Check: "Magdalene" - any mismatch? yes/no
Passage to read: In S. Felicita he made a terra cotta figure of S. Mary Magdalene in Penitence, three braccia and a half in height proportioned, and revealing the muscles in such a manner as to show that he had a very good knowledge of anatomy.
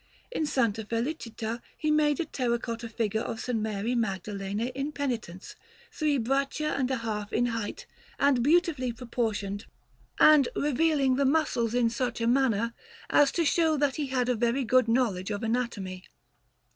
no